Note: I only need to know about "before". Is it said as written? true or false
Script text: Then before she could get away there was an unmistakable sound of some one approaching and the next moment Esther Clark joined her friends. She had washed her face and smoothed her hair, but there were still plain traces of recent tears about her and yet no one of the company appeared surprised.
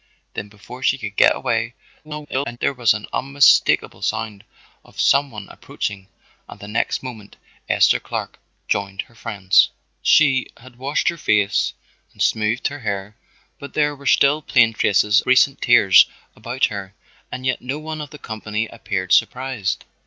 true